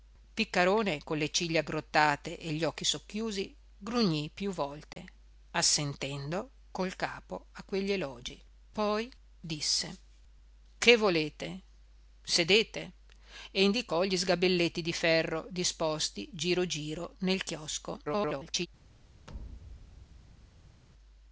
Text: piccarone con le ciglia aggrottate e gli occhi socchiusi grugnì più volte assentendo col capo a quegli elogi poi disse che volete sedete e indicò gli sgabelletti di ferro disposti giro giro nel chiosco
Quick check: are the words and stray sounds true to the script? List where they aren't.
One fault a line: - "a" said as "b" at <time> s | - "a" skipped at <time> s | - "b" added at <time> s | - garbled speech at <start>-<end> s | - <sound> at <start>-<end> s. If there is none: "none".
- dropout at 4.9-5.0 s
- garbled speech at 18.0-18.7 s
- thud at 19.3-20.8 s